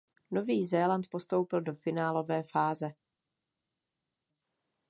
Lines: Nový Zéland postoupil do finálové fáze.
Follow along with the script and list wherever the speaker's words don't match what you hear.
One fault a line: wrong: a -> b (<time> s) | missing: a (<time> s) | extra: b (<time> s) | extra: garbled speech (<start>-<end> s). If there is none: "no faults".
no faults